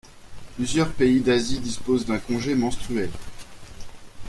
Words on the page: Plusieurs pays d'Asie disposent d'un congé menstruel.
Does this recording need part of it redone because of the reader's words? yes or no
no